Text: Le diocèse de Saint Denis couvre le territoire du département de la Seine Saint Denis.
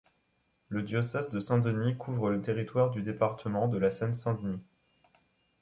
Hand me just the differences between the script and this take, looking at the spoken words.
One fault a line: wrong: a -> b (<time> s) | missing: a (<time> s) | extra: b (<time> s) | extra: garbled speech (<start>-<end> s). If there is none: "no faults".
no faults